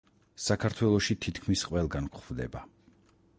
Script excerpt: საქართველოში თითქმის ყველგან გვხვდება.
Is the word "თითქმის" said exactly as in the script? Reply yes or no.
yes